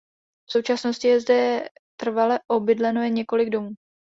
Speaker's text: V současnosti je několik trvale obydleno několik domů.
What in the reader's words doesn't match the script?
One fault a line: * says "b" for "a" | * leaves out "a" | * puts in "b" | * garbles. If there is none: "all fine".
* says "zde" for "několik"
* puts in "jen"